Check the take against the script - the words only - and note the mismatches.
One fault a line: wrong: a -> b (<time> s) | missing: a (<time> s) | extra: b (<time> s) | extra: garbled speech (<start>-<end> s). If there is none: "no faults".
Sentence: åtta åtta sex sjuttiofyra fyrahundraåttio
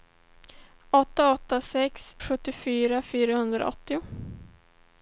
no faults